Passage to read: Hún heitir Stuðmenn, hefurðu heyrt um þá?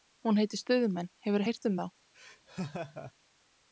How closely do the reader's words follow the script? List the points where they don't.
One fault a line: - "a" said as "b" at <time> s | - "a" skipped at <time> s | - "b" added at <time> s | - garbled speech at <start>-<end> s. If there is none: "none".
none